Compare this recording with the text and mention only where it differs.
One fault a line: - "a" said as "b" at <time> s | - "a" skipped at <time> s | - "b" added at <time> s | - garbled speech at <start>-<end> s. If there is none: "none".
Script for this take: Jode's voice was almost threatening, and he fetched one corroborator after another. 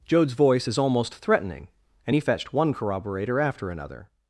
- "was" said as "is" at 0.7 s